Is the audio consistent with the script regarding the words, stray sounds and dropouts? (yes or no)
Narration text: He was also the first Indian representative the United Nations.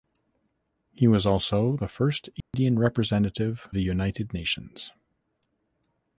no